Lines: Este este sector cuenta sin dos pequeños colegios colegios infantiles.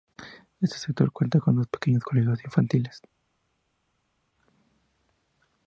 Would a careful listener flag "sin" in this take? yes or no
yes